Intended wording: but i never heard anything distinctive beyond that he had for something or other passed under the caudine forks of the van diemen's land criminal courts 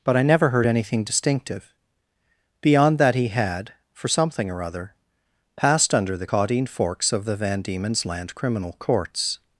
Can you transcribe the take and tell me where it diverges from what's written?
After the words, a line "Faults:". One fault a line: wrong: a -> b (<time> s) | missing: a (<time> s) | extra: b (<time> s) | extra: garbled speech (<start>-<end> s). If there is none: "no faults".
but i never heard anything distinctive beyond that he had for something or other passed under the caudine forks of the van diemen's land criminal courts
Faults:
no faults